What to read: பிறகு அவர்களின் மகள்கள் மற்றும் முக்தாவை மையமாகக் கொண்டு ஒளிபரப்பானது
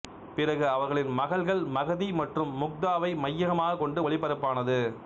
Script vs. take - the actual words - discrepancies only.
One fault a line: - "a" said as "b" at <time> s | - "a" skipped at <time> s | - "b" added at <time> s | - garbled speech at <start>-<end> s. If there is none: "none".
- "மகதி" added at 1.8 s